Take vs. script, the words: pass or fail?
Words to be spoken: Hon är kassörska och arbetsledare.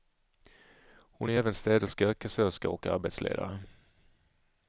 fail